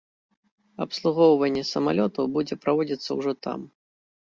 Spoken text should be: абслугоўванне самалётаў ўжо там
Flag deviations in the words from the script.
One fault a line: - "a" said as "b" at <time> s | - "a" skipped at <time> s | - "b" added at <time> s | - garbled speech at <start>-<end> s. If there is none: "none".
- "будзе праводзіцца" added at 2.4 s